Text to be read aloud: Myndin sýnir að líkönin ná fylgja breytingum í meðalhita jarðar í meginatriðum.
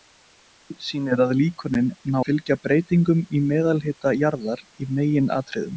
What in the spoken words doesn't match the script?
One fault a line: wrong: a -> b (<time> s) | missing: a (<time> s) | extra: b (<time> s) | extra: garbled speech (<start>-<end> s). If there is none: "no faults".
no faults